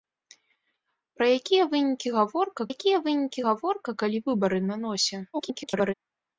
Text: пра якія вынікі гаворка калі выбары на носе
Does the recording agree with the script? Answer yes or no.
no